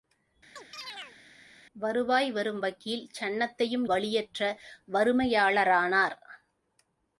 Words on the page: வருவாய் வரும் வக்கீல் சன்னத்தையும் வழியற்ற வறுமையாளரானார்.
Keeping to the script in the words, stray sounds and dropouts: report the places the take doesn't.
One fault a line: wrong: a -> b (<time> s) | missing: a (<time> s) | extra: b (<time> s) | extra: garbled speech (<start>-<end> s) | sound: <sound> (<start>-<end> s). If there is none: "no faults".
sound: chirp (0.6-1.2 s)